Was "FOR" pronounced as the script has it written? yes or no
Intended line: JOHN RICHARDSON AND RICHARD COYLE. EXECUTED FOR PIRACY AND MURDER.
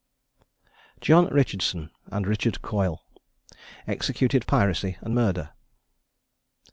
no